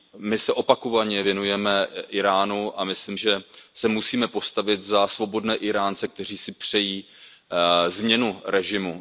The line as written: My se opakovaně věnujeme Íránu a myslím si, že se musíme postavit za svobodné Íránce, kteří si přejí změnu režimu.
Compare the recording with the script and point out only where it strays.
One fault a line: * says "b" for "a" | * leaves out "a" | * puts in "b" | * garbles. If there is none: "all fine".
* leaves out "si"